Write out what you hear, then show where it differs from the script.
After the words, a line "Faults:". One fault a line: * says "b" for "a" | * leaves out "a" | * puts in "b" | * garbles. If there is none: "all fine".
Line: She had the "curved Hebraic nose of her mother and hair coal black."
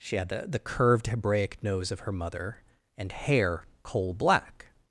She had the the "curved Hebraic nose of her mother and hair coal black."
Faults:
* puts in "the"